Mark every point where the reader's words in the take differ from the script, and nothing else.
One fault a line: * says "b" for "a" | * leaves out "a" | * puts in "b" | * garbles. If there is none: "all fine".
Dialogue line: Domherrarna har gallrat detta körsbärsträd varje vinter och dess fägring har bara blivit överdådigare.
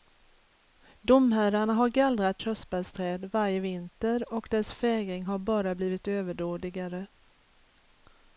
* leaves out "detta"